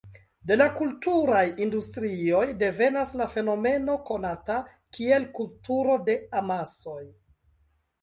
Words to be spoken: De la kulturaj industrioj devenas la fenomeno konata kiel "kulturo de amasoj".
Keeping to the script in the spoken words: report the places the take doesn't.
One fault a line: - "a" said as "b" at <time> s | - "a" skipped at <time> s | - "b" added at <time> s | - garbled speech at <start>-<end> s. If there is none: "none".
none